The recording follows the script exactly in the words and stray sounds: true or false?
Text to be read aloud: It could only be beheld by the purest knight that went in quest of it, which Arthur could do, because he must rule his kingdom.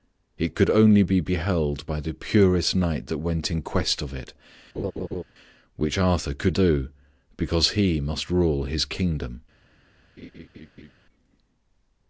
false